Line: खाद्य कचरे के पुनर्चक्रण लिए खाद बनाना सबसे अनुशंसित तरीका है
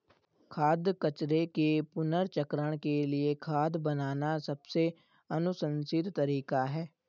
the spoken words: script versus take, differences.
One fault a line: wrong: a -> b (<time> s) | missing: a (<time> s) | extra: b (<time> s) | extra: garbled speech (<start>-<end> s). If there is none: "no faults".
extra: के (2.8 s)